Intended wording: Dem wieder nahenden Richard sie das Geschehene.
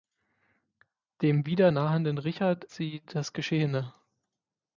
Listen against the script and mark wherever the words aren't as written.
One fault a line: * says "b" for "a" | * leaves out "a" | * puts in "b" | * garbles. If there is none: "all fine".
all fine